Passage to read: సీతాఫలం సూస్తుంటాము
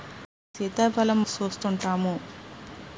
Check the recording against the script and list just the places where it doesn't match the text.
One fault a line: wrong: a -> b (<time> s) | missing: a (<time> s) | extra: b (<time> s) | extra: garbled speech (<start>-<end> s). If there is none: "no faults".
no faults